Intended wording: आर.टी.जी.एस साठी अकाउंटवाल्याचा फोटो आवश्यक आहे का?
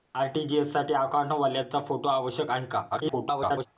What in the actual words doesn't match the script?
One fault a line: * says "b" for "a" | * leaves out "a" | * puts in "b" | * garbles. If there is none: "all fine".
* garbles